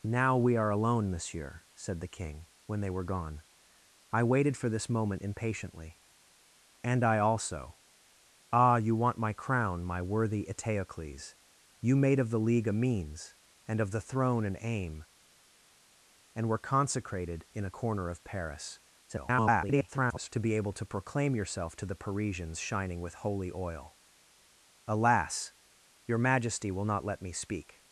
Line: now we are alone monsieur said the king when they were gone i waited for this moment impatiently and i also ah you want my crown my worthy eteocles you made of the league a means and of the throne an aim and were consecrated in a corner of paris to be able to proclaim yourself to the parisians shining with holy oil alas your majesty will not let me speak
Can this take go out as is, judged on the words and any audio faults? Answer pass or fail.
fail